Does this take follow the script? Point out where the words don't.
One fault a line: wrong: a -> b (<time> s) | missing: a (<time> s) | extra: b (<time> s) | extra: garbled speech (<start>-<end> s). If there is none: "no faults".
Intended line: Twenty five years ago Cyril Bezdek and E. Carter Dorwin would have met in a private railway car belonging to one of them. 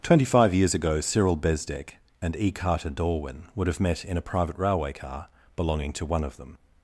no faults